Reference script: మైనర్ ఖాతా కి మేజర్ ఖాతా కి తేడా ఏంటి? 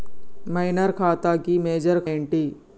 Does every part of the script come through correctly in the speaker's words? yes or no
no